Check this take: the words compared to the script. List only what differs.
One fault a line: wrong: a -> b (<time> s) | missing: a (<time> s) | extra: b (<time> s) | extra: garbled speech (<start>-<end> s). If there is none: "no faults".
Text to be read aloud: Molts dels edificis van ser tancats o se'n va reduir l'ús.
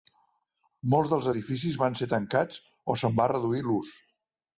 no faults